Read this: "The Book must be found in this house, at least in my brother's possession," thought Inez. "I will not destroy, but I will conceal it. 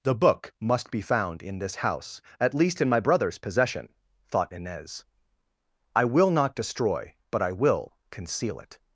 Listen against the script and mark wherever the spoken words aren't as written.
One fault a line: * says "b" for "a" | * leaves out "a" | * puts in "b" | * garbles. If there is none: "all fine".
all fine